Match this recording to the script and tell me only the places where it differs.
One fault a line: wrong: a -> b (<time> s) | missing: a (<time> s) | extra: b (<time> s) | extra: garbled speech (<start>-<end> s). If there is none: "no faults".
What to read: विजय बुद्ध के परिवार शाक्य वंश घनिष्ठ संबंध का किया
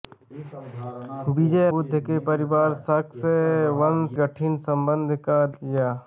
no faults